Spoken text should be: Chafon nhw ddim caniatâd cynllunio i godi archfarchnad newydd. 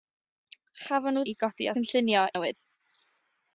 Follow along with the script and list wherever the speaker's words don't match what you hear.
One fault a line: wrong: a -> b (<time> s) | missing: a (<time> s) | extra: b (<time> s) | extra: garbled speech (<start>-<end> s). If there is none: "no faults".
missing: ddim caniatâd cynllunio (1.2 s)
wrong: archfarchnad -> cynllunio (1.8 s)